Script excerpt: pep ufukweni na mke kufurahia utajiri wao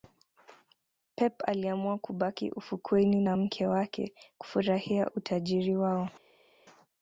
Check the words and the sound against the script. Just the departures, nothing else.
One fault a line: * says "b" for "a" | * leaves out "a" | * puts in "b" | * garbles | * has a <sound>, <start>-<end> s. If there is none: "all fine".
* puts in "aliamua kubaki"
* puts in "wake"